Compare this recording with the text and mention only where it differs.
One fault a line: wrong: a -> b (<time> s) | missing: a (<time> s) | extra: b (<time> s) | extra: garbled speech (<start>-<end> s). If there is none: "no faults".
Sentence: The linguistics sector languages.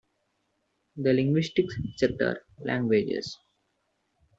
no faults